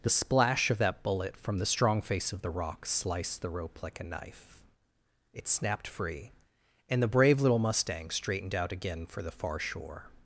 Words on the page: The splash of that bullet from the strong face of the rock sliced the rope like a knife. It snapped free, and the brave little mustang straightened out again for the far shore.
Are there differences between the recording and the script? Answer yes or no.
no